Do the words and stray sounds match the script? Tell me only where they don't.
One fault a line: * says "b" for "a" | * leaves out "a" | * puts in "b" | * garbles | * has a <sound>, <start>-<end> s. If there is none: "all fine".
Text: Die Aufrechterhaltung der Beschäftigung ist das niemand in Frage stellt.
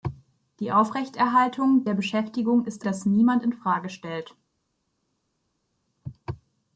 all fine